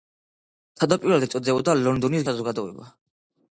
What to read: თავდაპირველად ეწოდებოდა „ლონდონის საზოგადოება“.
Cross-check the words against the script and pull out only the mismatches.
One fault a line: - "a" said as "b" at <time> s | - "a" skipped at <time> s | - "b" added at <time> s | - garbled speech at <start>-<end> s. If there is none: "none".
none